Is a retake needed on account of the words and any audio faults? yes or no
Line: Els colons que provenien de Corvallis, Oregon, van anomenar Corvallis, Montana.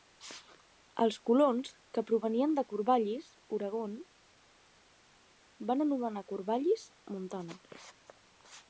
no